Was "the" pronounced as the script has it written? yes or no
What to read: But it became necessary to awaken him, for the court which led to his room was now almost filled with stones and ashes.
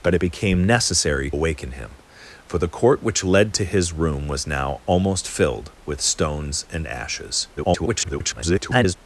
yes